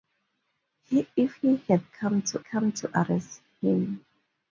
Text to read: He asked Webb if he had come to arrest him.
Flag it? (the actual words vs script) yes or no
yes